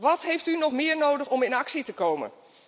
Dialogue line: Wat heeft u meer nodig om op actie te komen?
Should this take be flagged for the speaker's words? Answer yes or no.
yes